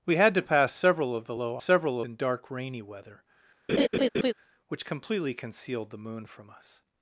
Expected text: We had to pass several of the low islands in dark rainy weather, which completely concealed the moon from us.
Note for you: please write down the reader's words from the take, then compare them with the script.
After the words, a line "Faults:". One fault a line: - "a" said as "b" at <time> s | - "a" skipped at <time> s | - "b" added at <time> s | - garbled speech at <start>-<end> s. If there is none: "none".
We had to pass several of the low several in dark rainy weather, which completely concealed the moon from us.
Faults:
- "islands" said as "several" at 1.6 s